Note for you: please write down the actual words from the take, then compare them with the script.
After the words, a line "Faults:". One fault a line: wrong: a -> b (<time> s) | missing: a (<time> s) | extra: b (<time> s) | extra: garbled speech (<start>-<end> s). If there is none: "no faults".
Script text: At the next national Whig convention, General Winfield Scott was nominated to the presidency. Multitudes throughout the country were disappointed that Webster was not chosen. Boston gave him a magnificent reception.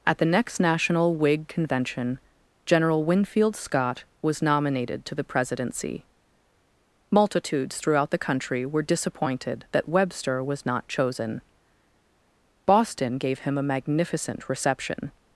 At the next national Whig convention, General Winfield Scott was nominated to the presidency. Multitudes throughout the country were disappointed that Webster was not chosen. Boston gave him a magnificent reception.
Faults:
no faults